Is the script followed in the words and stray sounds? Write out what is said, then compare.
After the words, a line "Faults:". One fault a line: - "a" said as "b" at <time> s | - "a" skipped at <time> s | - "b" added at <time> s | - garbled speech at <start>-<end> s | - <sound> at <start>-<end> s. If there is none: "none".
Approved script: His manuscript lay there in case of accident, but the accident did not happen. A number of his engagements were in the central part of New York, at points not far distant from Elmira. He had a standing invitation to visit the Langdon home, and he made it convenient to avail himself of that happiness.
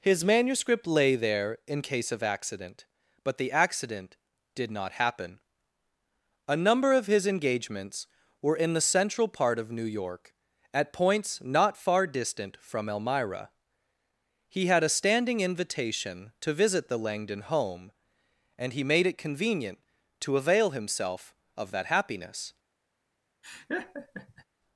His manuscript lay there in case of accident, but the accident did not happen. A number of his engagements were in the central part of New York, at points not far distant from Elmira. He had a standing invitation to visit the Langdon home, and he made it convenient to avail himself of that happiness.
Faults:
- laugh at 23.4-24.4 s